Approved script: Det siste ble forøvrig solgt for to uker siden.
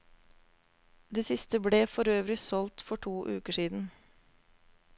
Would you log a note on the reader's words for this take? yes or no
no